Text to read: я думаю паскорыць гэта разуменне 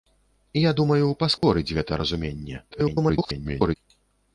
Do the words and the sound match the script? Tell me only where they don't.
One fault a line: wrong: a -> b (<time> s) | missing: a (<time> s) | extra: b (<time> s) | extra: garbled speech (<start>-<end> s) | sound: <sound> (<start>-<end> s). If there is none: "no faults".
sound: dropout (1.4-1.4 s)
extra: garbled speech (2.7-3.8 s)